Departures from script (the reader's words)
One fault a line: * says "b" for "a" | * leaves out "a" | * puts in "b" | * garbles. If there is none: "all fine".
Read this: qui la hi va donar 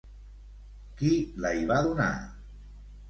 all fine